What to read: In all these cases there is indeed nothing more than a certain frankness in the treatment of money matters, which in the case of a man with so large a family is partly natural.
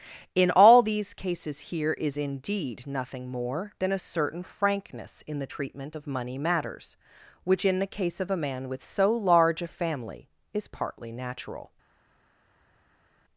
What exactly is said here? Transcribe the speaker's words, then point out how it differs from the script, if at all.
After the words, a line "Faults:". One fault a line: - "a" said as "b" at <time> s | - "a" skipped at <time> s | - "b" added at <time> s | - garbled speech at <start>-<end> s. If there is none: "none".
In all these cases here is indeed nothing more than a certain frankness in the treatment of money matters, which in the case of a man with so large a family is partly natural.
Faults:
- "there" said as "here" at 1.7 s